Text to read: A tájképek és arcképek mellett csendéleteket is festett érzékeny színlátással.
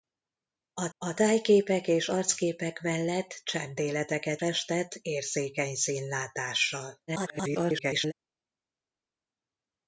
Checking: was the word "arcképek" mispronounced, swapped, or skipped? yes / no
no